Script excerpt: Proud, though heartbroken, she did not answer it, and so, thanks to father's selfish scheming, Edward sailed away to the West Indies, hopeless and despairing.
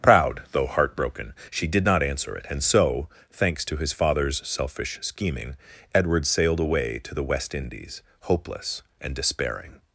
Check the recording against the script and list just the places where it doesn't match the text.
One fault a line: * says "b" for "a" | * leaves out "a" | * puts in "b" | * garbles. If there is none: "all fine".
* puts in "his"